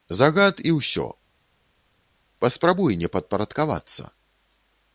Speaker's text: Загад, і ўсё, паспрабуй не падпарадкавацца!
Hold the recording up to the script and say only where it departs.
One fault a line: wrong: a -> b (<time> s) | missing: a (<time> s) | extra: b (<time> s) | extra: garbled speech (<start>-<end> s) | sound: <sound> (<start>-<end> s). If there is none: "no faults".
no faults